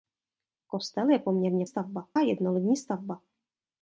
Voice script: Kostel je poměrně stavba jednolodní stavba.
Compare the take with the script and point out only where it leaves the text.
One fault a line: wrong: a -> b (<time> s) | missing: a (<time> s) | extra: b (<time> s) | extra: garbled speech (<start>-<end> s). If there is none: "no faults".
no faults